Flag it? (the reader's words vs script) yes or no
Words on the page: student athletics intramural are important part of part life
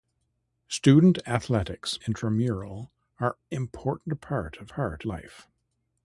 no